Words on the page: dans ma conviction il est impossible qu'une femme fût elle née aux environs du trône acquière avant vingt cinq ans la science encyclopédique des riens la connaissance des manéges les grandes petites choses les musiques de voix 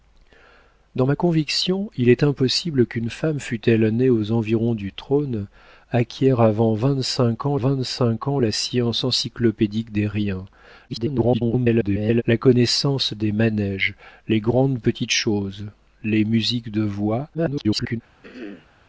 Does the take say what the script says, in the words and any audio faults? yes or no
no